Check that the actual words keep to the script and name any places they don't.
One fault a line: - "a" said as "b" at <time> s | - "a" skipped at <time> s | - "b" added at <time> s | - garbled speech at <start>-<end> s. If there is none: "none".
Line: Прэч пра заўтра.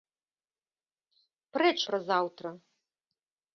none